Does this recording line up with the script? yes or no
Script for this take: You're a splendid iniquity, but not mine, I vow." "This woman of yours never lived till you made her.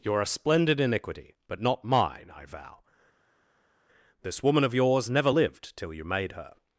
yes